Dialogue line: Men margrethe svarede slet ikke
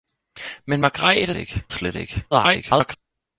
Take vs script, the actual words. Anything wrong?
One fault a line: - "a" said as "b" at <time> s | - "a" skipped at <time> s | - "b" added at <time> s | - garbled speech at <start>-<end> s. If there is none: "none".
- "svarede" said as "ikke" at 1.3 s
- garbled speech at 2.3-3.0 s